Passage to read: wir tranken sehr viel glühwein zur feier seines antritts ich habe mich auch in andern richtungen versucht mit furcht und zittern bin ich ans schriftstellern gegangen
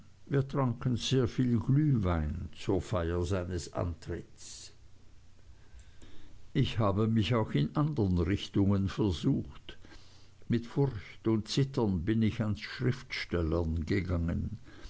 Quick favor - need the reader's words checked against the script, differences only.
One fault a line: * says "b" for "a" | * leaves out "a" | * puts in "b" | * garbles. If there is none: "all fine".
all fine